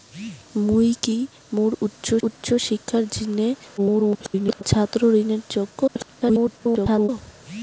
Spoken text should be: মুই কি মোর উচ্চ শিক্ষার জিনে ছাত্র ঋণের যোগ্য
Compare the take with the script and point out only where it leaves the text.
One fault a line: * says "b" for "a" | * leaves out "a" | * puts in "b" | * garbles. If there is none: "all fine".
* puts in "উচ্চ"
* garbles
* garbles